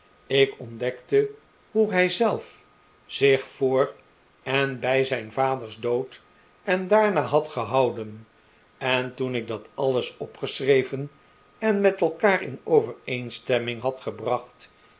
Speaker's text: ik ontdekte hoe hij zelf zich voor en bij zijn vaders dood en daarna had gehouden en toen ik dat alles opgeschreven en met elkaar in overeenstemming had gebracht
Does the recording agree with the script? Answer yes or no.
yes